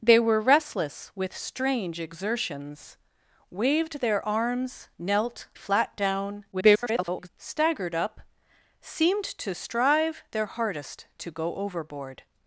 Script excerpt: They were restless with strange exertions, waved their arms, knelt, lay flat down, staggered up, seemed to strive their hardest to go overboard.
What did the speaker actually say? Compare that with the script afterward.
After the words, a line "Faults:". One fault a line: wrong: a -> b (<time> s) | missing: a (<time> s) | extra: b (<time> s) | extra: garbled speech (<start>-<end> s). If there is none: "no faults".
They were restless with strange exertions, waved their arms, knelt, flat down, [garbled] staggered up, seemed to strive their hardest to go overboard.
Faults:
missing: lay (5.5 s)
extra: garbled speech (6.5-7.3 s)